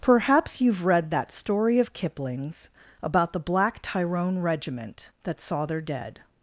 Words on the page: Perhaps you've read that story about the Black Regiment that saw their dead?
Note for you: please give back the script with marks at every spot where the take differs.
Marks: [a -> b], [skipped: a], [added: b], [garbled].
Perhaps you've read that story [added: of Kipling's] about the Black [added: Tyrone] Regiment that saw their dead?